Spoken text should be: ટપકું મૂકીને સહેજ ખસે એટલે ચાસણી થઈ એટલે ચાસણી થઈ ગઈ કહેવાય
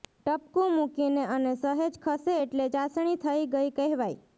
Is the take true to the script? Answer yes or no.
no